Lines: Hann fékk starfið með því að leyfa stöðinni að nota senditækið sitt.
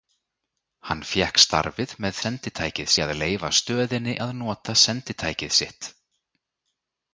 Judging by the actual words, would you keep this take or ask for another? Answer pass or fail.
fail